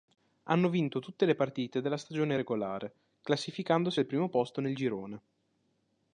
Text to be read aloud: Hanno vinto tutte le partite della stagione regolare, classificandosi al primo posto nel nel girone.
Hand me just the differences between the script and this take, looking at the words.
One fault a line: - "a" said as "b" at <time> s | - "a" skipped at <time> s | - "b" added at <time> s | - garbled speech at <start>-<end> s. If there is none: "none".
- "nel" skipped at 4.7 s